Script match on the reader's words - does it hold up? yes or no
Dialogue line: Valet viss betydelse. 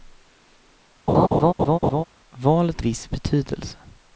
yes